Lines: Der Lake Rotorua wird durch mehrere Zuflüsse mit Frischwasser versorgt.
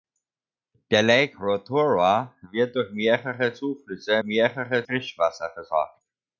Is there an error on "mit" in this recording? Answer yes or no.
yes